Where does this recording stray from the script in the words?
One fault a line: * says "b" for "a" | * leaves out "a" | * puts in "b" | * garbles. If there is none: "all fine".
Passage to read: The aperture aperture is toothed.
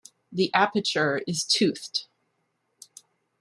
* leaves out "aperture"